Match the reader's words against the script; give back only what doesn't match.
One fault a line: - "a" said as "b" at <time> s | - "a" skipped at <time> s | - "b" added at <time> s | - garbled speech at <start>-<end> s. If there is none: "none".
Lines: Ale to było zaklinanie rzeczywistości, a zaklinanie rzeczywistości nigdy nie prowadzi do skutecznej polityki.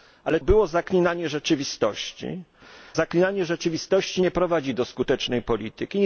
- "to" skipped at 0.4 s
- "a" skipped at 2.4 s
- "nigdy" skipped at 4.2 s